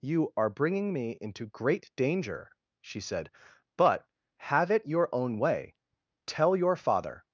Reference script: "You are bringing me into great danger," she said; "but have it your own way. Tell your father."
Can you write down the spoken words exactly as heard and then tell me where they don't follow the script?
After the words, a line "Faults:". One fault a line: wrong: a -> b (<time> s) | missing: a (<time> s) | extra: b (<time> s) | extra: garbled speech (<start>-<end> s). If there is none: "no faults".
"You are bringing me into great danger," she said; "but have it your own way. Tell your father."
Faults:
no faults